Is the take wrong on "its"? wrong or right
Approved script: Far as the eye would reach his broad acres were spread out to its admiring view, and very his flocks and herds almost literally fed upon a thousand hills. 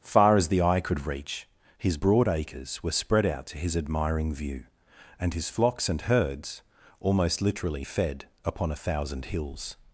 wrong